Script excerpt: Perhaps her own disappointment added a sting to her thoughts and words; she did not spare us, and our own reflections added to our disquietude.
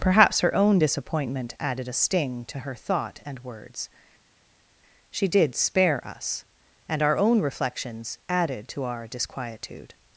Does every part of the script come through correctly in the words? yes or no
no